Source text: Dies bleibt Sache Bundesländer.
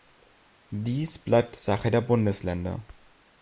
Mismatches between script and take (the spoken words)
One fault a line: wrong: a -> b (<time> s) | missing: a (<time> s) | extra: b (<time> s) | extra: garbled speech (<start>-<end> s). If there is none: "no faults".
extra: der (1.9 s)